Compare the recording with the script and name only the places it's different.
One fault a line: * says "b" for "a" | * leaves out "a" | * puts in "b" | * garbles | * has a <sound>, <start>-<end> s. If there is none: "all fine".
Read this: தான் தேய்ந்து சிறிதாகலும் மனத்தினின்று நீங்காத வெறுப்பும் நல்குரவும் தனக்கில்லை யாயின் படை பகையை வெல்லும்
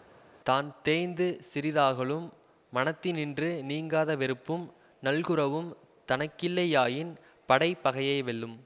all fine